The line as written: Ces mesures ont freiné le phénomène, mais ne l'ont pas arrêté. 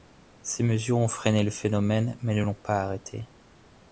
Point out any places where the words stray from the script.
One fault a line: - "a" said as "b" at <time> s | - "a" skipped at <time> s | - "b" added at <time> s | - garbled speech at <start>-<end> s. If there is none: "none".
none